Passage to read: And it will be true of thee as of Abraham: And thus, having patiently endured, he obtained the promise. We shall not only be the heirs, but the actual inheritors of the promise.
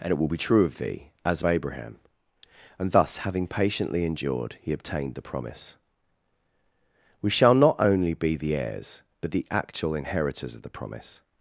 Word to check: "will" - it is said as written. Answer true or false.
true